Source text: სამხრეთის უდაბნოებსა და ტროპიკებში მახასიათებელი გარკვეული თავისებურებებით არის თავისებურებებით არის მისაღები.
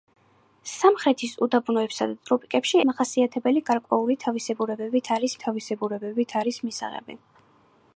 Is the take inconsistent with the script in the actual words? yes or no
no